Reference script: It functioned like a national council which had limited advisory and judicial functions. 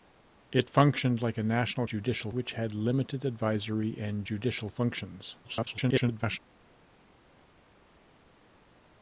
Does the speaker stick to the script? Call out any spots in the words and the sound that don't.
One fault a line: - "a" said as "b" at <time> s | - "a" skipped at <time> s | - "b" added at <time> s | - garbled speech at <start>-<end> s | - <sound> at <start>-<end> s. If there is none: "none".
- "council" said as "judicial" at 1.8 s
- garbled speech at 5.4-6.4 s